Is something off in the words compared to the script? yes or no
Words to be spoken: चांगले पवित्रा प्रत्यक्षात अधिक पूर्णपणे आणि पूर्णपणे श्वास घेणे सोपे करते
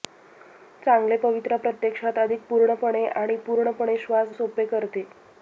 yes